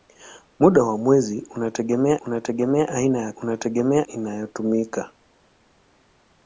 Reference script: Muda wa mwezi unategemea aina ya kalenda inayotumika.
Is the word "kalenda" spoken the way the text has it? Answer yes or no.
no